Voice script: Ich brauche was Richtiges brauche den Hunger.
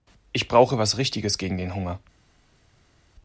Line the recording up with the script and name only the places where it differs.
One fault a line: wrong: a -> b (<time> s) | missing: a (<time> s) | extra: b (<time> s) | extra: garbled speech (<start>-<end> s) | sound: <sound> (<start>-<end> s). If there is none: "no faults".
wrong: brauche -> gegen (1.4 s)